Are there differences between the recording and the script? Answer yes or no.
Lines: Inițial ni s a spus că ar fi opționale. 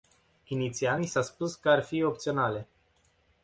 no